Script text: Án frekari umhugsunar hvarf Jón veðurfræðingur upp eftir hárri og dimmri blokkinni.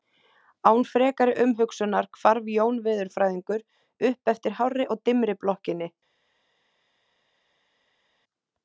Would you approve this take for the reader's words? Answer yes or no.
yes